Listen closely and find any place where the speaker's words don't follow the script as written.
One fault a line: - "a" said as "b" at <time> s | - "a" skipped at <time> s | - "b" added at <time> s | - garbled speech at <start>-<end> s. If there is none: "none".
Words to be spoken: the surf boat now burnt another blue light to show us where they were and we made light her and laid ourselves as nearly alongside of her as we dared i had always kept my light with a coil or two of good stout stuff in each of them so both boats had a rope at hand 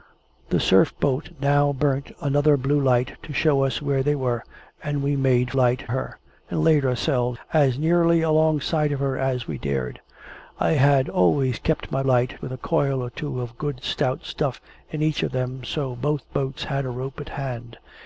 none